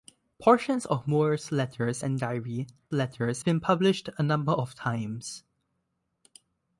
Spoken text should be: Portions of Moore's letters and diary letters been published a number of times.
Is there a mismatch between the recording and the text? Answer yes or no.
no